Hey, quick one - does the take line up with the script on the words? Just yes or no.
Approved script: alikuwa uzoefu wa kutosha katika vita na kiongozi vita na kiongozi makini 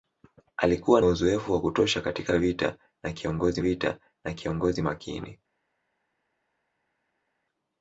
yes